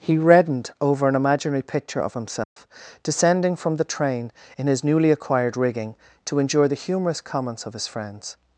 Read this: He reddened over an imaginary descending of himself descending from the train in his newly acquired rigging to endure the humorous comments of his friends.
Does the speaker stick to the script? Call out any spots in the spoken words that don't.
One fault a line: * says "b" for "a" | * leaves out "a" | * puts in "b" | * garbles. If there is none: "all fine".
* says "picture" for "descending"